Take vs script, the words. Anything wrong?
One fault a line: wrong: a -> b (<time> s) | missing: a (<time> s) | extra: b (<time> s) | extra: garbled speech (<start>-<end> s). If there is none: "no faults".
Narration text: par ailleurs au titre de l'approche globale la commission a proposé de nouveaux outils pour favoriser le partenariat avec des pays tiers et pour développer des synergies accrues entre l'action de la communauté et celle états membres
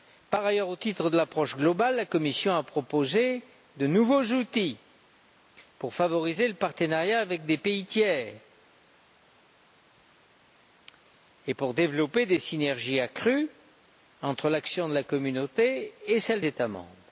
no faults